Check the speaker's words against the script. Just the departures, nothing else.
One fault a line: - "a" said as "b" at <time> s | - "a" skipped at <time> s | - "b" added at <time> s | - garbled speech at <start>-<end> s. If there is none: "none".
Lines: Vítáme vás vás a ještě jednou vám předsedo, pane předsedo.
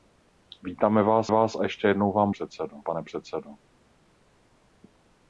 none